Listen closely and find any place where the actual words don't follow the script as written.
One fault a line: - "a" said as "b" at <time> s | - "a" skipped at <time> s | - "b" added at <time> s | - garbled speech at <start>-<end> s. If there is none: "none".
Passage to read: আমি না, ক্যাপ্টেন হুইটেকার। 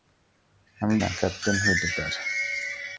none